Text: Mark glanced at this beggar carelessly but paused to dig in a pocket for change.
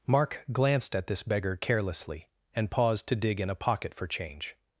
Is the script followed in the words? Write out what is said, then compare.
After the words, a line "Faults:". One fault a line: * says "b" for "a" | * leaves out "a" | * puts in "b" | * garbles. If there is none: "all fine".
Mark glanced at this beggar carelessly and paused to dig in a pocket for change.
Faults:
* says "and" for "but"